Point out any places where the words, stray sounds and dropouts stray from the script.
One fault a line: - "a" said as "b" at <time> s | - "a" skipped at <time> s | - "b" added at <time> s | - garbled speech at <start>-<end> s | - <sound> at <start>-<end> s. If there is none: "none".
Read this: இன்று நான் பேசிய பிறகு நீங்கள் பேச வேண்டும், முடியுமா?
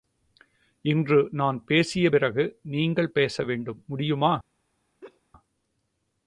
- laugh at 5.0-5.2 s